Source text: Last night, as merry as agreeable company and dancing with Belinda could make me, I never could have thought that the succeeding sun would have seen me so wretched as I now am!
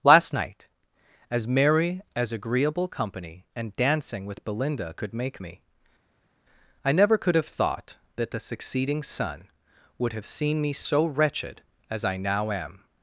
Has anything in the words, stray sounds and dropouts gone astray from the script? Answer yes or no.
no